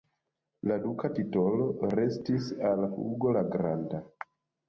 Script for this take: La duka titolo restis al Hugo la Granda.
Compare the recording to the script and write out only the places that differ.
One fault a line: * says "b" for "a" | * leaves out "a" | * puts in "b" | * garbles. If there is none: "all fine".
all fine